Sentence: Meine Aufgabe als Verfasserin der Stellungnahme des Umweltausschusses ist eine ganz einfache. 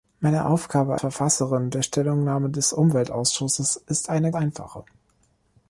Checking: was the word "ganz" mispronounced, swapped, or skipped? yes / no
yes